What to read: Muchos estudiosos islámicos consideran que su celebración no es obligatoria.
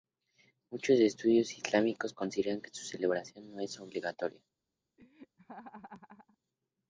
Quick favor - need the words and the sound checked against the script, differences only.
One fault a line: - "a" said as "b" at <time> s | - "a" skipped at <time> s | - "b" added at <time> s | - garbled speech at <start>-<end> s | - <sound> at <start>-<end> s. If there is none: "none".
- laugh at 5.0-6.4 s